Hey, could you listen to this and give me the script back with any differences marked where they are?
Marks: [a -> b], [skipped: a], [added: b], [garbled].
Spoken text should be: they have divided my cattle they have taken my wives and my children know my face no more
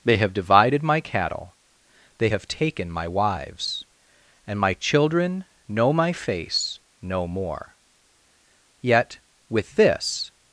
they have divided my cattle they have taken my wives and my children know my face no more [added: yet with this]